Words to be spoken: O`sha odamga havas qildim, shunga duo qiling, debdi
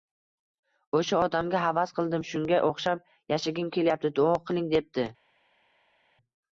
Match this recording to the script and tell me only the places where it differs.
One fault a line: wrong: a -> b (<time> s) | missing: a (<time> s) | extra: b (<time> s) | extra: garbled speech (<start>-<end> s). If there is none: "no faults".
extra: o`xshab yashagim kelyapti (2.7 s)